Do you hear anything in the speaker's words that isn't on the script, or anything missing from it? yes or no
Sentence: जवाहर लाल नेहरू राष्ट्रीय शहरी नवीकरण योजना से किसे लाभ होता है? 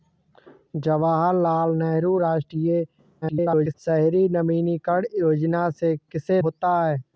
yes